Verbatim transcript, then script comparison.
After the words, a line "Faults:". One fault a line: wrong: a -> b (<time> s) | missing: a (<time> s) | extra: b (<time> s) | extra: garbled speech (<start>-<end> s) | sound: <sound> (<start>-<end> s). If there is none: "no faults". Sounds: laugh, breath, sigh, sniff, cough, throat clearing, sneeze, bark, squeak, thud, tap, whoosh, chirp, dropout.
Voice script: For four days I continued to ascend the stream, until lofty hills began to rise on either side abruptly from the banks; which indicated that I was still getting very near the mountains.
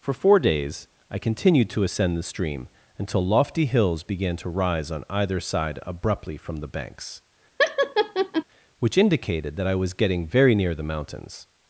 For four days I continued to ascend the stream, until lofty hills began to rise on either side abruptly from the banks; which indicated that I was getting very near the mountains.
Faults:
sound: laugh (7.6-8.4 s)
missing: still (9.9 s)